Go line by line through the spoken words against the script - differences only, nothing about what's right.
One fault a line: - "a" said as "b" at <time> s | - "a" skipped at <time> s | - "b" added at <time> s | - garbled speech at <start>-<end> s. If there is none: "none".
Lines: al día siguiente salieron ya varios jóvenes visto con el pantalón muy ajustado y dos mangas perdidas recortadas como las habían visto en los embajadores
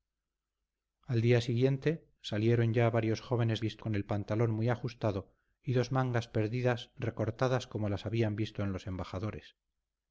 none